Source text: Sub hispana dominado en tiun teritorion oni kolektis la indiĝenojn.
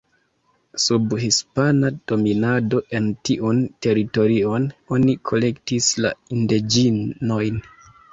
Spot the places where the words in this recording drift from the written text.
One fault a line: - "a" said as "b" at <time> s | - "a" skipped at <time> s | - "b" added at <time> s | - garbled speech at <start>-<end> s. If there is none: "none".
none